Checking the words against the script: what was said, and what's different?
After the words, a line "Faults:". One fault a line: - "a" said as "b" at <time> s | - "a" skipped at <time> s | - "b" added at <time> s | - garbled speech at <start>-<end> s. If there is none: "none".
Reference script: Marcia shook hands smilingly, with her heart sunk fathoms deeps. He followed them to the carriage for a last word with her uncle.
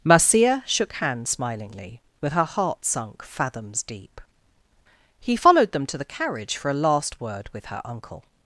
Marcia shook hands smilingly, with her heart sunk fathoms deep. He followed them to the carriage for a last word with her uncle.
Faults:
- "deeps" said as "deep" at 3.8 s